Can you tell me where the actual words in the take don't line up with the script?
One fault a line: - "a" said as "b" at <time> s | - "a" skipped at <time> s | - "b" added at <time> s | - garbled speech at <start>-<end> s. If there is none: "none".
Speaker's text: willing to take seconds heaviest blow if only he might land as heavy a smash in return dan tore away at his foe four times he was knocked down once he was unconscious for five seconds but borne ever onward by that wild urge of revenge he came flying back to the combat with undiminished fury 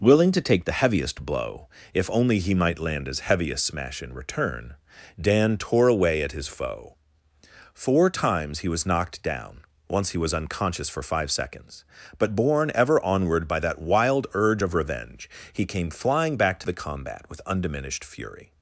- "seconds" said as "the" at 0.7 s